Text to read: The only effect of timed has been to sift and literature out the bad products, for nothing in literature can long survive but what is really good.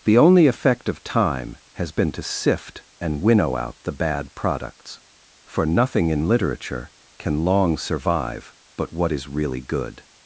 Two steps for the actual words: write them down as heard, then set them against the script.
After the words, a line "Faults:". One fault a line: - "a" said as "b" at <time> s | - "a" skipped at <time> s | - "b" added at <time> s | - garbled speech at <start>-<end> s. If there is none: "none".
The only effect of time has been to sift and winnow out the bad products, for nothing in literature can long survive but what is really good.
Faults:
- "timed" said as "time" at 1.0 s
- "literature" said as "winnow" at 3.2 s